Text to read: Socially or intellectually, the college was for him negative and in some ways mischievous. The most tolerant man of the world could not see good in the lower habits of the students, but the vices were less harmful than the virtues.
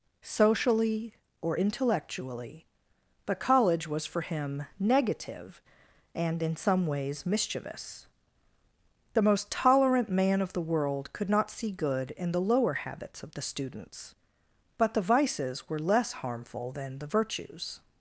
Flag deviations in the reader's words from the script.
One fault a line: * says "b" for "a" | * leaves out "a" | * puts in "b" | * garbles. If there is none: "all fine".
* says "but" for "the"